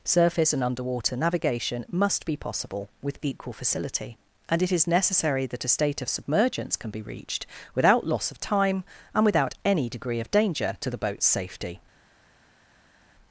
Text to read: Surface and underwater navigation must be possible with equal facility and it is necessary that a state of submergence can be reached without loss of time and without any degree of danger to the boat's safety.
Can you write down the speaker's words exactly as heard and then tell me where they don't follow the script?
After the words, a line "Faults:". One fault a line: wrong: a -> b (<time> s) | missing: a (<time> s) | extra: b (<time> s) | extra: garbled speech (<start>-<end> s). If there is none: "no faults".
Surface and underwater navigation must be possible with equal facility and it is necessary that a state of submergence can be reached without loss of time and without any degree of danger to the boat's safety.
Faults:
no faults